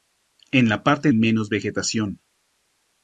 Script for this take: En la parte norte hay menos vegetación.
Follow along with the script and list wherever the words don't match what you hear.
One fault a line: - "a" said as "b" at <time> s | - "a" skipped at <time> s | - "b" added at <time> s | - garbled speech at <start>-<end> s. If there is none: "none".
- "norte hay" skipped at 1.1 s